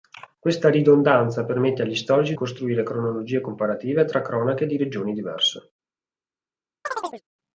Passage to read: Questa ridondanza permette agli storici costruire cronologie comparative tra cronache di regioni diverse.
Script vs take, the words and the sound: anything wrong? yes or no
yes